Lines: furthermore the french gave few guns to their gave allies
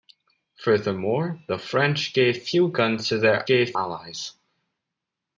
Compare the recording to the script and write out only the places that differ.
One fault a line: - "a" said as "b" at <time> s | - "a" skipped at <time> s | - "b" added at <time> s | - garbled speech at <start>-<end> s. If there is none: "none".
none